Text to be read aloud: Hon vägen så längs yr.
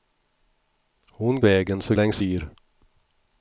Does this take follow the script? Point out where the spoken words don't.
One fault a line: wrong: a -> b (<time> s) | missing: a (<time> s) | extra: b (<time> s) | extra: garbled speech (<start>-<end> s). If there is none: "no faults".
no faults